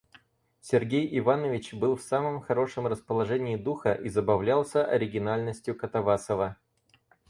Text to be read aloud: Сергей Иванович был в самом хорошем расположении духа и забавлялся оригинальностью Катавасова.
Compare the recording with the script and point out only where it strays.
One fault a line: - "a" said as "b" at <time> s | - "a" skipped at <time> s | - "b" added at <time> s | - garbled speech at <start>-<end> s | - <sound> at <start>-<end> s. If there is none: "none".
none